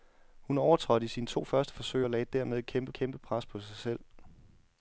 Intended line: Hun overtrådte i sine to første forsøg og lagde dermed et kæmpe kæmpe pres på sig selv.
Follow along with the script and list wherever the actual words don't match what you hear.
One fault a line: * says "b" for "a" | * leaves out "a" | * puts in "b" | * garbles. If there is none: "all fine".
all fine